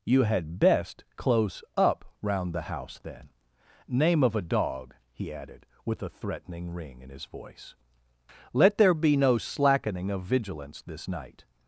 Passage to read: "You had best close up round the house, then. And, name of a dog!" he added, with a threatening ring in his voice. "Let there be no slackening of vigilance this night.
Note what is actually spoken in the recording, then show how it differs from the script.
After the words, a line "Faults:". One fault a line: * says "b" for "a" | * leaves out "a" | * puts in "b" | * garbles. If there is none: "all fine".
"You had best close up round the house, then. Name of a dog!" he added, with a threatening ring in his voice. "Let there be no slackening of vigilance this night.
Faults:
* leaves out "And"